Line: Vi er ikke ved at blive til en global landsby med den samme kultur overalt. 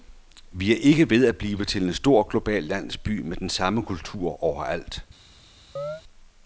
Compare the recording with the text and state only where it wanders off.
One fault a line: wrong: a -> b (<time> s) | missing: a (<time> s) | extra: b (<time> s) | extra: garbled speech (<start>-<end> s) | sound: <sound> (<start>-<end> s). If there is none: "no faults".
extra: stor (1.9 s)
sound: chirp (5.8-6.0 s)